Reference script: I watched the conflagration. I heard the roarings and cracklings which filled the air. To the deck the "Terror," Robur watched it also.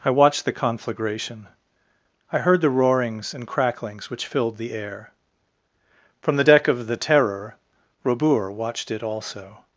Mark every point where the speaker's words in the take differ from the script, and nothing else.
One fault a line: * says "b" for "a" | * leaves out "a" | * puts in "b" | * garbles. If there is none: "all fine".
* says "From" for "To"
* puts in "of"